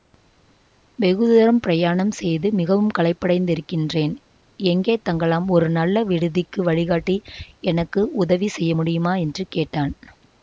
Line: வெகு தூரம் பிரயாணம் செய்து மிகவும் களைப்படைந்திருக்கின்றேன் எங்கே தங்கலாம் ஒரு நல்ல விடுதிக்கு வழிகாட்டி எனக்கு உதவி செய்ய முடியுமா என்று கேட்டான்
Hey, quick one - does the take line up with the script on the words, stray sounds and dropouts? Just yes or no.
yes